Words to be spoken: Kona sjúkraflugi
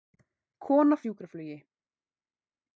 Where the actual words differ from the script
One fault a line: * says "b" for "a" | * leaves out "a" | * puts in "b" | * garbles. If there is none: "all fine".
all fine